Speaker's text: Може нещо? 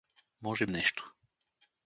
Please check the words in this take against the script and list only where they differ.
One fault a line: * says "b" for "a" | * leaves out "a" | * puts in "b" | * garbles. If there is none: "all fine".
all fine